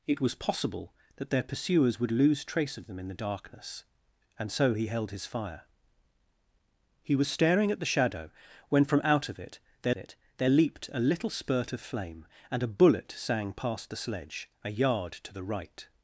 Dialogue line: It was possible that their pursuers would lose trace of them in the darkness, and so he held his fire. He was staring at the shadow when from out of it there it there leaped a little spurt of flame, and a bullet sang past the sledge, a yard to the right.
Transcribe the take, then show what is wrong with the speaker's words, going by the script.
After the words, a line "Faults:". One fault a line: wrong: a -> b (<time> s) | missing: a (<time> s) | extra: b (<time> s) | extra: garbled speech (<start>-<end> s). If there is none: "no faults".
It was possible that their pursuers would lose trace of them in the darkness, and so he held his fire. He was staring at the shadow when from out of it there it there leaped a little spurt of flame, and a bullet sang past the sledge, a yard to the right.
Faults:
no faults